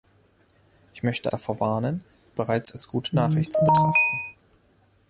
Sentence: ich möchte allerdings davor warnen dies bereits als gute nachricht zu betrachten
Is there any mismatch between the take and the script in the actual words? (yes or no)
yes